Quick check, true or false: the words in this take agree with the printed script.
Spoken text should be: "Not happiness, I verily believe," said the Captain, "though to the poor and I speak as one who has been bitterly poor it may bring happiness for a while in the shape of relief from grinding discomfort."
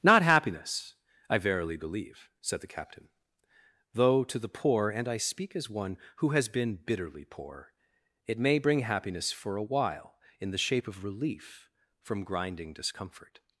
true